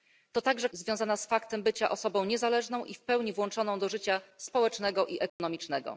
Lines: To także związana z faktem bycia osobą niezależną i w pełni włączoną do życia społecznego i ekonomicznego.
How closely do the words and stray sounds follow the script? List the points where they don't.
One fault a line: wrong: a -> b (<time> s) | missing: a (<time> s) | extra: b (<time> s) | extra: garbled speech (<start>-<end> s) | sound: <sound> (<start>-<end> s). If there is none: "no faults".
sound: dropout (5.3-5.4 s)